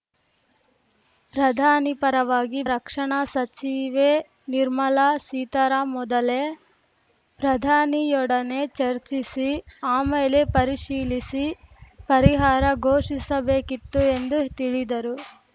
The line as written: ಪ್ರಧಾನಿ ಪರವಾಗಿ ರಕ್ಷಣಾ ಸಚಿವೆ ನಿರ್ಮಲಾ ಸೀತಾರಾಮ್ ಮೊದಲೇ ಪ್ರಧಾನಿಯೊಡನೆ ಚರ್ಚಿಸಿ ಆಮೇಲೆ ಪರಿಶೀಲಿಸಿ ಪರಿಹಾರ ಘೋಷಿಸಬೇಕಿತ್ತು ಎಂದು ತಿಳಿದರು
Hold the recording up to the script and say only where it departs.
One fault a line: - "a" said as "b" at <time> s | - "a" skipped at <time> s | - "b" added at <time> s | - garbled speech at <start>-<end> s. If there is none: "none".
none